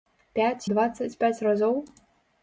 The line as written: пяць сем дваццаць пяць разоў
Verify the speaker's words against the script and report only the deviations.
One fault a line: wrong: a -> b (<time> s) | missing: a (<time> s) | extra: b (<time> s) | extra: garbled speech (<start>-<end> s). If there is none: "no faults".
missing: сем (0.7 s)